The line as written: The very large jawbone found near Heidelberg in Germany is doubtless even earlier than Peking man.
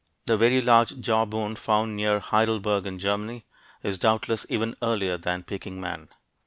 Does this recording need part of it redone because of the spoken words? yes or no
no